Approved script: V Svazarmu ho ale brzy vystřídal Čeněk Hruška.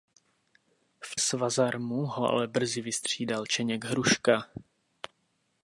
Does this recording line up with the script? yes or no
yes